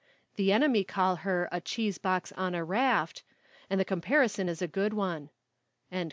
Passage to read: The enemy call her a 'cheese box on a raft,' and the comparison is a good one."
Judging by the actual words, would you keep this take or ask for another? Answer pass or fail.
pass